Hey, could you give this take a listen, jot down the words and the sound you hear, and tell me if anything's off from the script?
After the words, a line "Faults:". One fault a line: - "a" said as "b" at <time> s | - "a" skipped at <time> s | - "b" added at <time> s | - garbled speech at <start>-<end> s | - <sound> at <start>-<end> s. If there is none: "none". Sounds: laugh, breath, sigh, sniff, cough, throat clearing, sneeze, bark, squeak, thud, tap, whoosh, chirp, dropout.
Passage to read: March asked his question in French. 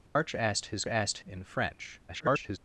March asked his asked in French. [garbled]
Faults:
- dropout at 0.1-0.2 s
- "question" said as "asked" at 0.9 s
- garbled speech at 2.1-2.6 s